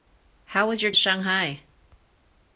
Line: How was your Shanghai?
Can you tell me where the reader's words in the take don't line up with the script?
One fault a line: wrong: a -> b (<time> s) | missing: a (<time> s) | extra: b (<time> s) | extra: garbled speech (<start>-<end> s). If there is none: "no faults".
no faults